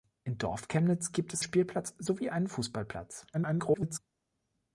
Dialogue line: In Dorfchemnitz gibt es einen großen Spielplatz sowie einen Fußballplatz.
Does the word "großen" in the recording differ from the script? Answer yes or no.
yes